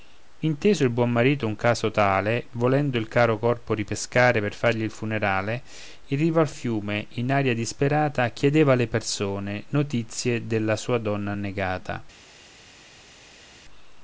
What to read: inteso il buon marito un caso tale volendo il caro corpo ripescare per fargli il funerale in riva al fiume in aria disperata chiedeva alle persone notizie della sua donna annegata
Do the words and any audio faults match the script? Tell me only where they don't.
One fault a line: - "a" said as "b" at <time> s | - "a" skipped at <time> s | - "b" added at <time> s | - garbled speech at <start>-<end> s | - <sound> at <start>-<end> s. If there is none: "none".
none